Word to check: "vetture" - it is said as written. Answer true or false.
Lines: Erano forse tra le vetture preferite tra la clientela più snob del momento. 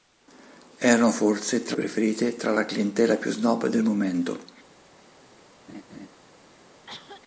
false